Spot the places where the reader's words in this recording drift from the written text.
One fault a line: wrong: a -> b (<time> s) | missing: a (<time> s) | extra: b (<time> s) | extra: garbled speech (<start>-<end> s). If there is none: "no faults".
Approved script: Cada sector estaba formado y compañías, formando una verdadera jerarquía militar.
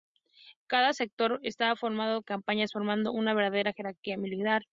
no faults